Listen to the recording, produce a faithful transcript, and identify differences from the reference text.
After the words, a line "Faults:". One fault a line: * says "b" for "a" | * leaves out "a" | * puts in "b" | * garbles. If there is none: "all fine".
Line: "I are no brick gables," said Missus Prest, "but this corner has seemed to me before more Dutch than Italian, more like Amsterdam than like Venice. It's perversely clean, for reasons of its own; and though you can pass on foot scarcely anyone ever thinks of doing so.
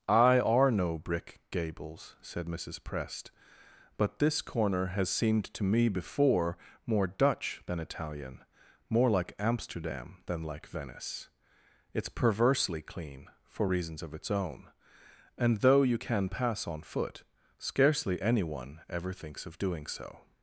"I are no brick gables," said Missus Prest, "but this corner has seemed to me before more Dutch than Italian, more like Amsterdam than like Venice. It's perversely clean, for reasons of its own; and though you can pass on foot scarcely anyone ever thinks of doing so.
Faults:
all fine